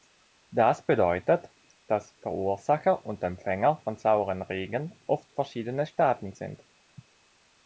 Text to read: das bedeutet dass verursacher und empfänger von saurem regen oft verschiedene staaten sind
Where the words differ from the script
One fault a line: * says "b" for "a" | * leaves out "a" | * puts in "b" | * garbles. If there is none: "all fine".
all fine